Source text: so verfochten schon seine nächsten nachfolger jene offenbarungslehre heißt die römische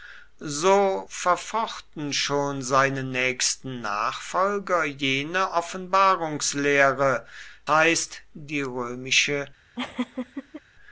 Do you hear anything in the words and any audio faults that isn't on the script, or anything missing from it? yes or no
yes